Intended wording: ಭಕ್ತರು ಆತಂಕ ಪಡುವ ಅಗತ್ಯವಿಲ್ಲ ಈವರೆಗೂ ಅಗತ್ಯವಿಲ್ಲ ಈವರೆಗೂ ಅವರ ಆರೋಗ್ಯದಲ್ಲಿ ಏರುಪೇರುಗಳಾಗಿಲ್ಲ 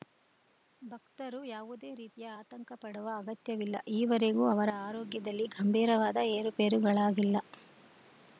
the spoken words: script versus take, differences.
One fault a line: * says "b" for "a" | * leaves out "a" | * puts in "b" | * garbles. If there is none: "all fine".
* puts in "ಯಾವುದೇ ರೀತಿಯ"
* leaves out "ಅಗತ್ಯವಿಲ್ಲ ಈವರೆಗೂ"
* puts in "ಗಂಭೀರವಾದ"